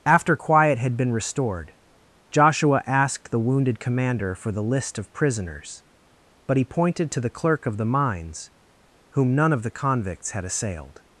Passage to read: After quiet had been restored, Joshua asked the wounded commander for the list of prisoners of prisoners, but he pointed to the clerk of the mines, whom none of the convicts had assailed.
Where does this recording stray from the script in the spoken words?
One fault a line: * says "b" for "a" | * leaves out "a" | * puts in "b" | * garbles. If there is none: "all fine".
* leaves out "of prisoners"